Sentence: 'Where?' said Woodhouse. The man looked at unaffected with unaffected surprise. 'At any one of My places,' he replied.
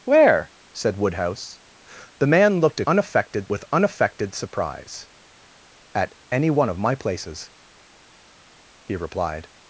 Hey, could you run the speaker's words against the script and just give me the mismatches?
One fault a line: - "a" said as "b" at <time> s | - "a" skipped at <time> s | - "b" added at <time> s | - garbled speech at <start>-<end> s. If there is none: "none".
none